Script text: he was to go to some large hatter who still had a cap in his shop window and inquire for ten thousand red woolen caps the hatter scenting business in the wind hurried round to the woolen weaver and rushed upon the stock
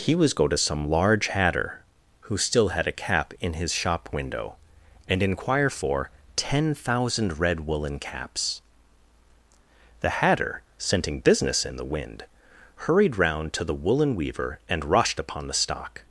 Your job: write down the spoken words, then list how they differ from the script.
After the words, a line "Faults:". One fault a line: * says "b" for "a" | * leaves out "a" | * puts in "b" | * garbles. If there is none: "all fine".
he was go to some large hatter who still had a cap in his shop window and inquire for ten thousand red woolen caps the hatter scenting business in the wind hurried round to the woolen weaver and rushed upon the stock
Faults:
* leaves out "to"